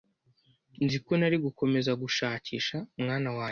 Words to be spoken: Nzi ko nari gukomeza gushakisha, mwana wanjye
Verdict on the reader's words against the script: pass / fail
pass